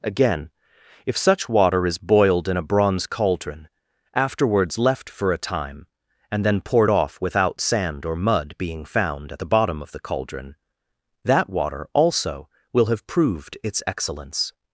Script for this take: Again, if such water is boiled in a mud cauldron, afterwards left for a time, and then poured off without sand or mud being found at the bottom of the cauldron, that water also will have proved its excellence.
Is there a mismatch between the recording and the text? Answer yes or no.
yes